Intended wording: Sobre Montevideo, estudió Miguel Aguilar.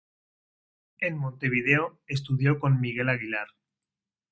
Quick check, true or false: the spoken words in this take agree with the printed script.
false